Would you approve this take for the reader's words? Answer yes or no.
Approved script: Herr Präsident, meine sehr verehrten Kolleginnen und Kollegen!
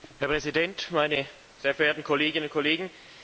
yes